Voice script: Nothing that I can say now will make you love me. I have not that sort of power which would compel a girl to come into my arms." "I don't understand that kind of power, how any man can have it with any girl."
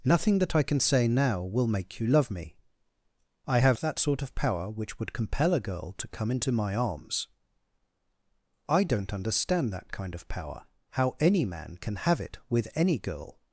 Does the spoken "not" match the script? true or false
false